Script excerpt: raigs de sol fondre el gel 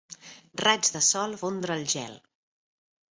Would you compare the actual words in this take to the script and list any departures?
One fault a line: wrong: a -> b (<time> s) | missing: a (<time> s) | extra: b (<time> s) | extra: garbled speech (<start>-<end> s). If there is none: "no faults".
no faults